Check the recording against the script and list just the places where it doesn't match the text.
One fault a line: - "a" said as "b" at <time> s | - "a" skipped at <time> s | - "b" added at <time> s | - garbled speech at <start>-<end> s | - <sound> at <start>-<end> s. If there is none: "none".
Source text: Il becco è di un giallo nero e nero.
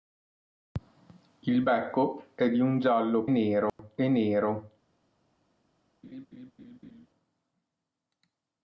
- dropout at 3.7-3.8 s
- laugh at 6.0-7.1 s